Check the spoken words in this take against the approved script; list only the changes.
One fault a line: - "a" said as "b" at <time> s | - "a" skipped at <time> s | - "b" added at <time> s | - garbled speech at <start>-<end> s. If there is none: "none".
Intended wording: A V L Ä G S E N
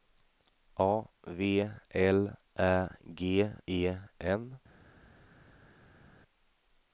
- "S" skipped at 3.2 s